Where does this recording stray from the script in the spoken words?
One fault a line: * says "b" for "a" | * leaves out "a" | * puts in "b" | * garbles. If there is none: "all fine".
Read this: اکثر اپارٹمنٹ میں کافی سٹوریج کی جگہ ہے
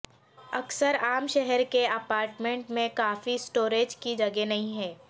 * puts in "عام شہر کے"
* puts in "نہیں"